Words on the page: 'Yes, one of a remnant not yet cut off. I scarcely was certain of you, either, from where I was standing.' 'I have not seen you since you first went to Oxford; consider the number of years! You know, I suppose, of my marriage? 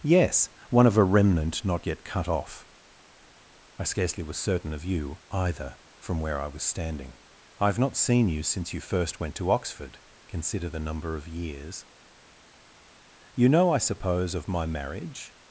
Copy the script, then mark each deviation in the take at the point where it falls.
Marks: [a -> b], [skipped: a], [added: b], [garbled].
'Yes, one of a remnant not yet cut off. I scarcely was certain of you, either, from where I was standing.' 'I have not seen you since you first went to Oxford; consider the number of years! You know, I suppose, of my marriage?